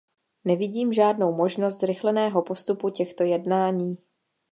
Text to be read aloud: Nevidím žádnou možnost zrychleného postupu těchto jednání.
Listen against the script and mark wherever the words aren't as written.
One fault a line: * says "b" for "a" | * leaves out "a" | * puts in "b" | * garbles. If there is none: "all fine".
all fine